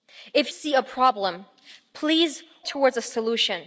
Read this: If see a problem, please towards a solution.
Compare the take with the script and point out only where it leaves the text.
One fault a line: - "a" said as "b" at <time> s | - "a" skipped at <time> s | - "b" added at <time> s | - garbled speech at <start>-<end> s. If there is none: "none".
none